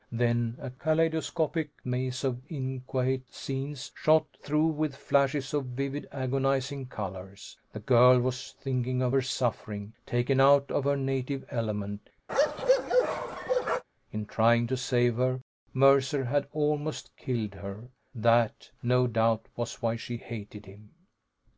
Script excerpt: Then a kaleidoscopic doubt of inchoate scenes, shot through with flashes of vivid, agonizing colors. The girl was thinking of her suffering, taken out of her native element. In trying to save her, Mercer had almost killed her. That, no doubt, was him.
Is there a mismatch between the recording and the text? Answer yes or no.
yes